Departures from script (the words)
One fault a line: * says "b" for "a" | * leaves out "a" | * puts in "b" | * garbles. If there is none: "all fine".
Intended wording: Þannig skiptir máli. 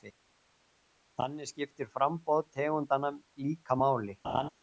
* puts in "framboð tegundanna líka"